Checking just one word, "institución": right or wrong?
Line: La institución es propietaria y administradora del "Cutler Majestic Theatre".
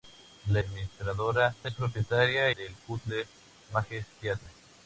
wrong